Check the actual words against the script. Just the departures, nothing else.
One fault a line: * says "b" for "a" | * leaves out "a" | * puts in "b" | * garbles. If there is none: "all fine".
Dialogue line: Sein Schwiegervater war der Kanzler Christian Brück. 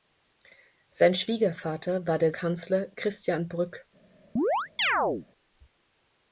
all fine